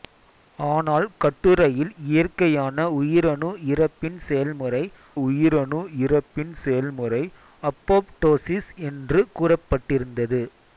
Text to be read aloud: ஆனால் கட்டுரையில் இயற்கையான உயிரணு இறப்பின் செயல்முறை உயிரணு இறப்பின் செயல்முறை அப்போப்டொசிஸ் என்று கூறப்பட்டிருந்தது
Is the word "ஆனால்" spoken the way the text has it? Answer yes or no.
yes